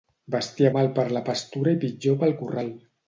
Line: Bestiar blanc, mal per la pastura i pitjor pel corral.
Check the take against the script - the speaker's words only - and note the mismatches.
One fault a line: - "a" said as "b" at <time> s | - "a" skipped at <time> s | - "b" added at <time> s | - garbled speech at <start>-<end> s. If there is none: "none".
- "blanc" skipped at 0.7 s